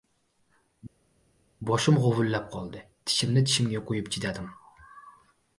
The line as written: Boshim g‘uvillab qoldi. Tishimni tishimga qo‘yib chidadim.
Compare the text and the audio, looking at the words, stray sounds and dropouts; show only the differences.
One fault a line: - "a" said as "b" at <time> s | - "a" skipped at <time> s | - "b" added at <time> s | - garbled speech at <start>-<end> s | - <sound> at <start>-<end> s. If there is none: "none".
none